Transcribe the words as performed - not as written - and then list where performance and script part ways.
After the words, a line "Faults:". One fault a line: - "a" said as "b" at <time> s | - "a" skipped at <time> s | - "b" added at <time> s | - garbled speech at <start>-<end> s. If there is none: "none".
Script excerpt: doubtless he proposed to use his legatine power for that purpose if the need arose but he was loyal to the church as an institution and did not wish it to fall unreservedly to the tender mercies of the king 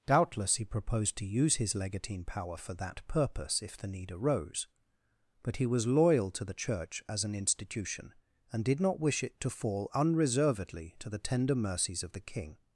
doubtless he proposed to use his legatine power for that purpose if the need arose but he was loyal to the church as an institution and did not wish it to fall unreservedly to the tender mercies of the king
Faults:
none